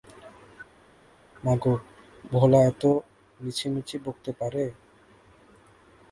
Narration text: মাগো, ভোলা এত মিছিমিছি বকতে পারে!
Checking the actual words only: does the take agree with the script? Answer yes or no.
yes